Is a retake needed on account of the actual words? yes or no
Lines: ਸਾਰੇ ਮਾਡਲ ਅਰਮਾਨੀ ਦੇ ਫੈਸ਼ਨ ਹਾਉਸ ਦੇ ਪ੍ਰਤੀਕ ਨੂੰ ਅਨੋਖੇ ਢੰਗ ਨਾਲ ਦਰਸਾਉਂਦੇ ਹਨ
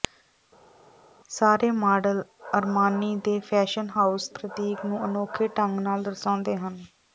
yes